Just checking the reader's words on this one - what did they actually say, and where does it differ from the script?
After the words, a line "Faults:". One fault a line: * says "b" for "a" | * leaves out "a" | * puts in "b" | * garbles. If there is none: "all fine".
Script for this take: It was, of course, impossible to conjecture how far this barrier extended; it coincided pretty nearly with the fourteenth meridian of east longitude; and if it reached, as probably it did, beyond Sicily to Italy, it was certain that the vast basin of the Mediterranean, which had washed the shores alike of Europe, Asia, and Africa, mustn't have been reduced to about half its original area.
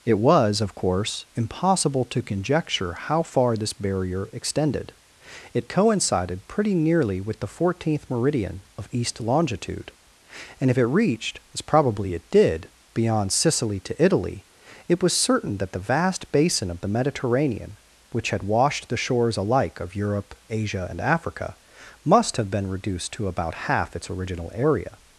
It was, of course, impossible to conjecture how far this barrier extended; it coincided pretty nearly with the fourteenth meridian of east longitude; and if it reached, as probably it did, beyond Sicily to Italy, it was certain that the vast basin of the Mediterranean, which had washed the shores alike of Europe, Asia, and Africa, must have been reduced to about half its original area.
Faults:
* says "must" for "mustn't"